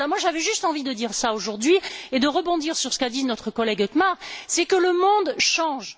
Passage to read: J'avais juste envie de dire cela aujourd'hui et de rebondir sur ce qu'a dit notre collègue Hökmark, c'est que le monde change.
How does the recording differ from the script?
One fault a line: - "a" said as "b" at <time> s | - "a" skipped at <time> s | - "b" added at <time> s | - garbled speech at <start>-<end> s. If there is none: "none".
none